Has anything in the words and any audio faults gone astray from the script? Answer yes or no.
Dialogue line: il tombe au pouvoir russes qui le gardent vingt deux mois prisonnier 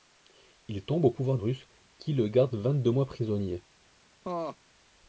yes